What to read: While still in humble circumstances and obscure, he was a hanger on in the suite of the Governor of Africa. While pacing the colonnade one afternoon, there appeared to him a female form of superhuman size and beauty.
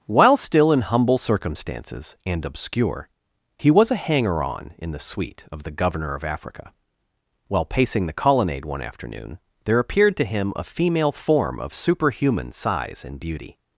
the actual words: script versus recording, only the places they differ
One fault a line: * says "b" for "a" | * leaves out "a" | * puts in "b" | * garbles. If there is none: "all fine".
all fine